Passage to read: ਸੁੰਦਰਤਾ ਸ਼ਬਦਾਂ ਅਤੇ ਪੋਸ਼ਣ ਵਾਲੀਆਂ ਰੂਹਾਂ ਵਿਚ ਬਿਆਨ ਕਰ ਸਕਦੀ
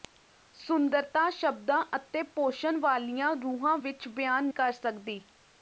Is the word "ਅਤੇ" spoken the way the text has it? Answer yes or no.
yes